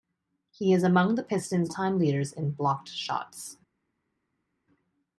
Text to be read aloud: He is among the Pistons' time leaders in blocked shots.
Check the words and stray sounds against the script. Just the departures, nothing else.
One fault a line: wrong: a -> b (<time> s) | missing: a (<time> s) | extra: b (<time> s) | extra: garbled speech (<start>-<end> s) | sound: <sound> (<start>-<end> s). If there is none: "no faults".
no faults